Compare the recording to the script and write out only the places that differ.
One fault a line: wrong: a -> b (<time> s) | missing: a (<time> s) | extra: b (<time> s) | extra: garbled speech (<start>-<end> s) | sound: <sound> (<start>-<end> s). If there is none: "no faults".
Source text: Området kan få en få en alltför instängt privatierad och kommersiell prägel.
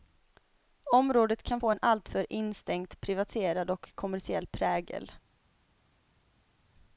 missing: få en (1.8 s)